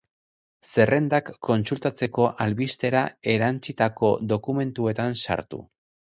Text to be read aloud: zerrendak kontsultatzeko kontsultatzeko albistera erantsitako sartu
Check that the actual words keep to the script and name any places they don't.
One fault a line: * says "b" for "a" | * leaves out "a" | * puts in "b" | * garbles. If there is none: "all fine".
* leaves out "kontsultatzeko"
* puts in "dokumentuetan"